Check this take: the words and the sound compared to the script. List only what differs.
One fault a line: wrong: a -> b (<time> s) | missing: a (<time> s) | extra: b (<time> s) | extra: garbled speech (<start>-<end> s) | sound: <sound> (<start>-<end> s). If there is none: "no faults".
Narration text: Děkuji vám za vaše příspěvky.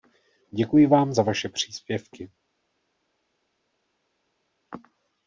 no faults